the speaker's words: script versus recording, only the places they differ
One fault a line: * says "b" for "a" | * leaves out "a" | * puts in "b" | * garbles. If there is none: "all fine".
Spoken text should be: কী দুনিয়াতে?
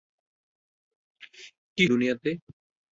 all fine